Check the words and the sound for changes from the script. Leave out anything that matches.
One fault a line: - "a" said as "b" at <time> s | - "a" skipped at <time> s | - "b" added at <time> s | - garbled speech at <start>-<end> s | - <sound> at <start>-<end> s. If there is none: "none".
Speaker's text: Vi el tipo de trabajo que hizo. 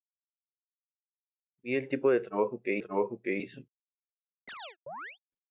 - "trabajo que" added at 2.8 s
- chirp at 4.5-5.2 s